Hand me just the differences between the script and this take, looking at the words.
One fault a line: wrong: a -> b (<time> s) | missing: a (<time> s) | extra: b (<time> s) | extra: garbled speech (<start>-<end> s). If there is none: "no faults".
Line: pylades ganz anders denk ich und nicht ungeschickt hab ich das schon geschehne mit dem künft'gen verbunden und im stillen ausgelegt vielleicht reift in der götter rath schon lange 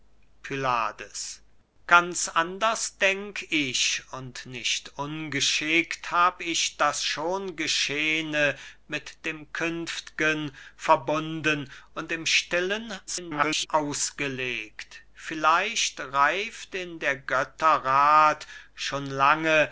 extra: garbled speech (13.1-13.7 s)